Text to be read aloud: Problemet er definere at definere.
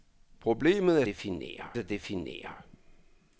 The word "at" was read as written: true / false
true